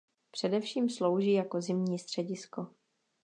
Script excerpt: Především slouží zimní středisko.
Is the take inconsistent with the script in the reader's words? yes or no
yes